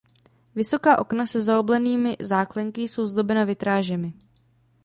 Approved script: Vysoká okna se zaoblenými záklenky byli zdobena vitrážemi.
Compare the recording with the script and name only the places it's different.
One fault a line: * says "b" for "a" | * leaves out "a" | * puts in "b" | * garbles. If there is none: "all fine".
* says "jsou" for "byli"